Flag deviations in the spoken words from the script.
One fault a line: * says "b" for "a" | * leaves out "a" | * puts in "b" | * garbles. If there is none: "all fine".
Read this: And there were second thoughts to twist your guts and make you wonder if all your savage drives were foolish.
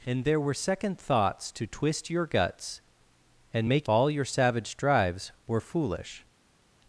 * leaves out "you wonder if"